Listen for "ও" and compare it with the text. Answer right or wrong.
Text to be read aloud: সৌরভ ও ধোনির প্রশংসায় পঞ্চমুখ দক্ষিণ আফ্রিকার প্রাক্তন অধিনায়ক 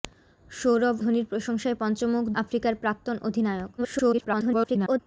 wrong